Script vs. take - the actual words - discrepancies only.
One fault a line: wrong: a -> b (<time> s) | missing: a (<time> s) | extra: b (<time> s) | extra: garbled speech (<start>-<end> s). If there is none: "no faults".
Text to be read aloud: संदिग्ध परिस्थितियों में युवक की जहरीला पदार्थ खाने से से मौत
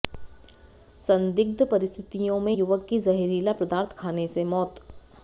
missing: से (4.4 s)